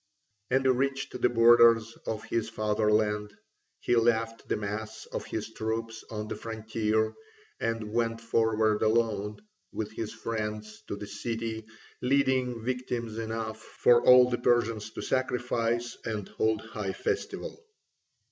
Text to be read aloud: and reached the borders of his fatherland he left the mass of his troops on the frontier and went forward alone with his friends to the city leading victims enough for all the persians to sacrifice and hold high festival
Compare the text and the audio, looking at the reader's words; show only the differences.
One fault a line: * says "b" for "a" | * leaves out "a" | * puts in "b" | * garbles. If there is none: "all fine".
all fine